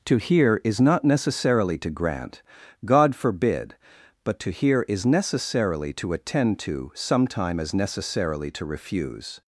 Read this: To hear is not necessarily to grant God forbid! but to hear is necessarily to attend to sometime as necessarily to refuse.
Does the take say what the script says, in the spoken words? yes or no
yes